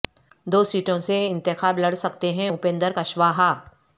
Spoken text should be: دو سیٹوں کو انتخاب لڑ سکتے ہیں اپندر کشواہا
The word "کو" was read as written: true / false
false